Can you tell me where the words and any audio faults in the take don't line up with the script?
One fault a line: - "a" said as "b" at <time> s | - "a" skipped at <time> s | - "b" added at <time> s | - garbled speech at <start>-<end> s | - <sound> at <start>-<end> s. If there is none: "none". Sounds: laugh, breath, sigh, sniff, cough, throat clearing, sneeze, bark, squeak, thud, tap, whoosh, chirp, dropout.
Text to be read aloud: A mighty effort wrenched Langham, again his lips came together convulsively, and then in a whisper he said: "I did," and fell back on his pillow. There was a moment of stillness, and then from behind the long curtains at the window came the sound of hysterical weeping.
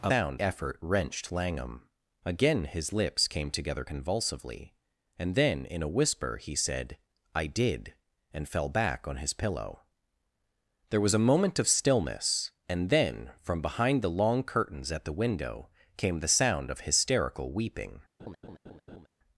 - "mighty" said as "sound" at 0.1 s
- laugh at 18.2-19.1 s